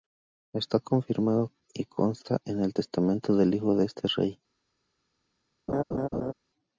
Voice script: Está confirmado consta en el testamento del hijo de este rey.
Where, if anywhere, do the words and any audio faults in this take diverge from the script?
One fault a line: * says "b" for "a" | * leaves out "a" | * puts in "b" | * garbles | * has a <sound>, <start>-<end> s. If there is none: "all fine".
* puts in "y"
* has a laugh, 5.7-6.3 s